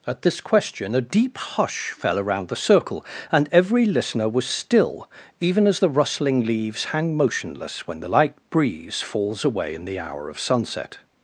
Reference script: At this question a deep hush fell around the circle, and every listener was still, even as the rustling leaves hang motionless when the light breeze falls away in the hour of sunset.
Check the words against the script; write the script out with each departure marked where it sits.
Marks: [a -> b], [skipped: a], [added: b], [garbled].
At this question a deep hush fell around the circle, and every listener was still, even as the rustling leaves hang motionless when the light breeze falls away in the hour of sunset.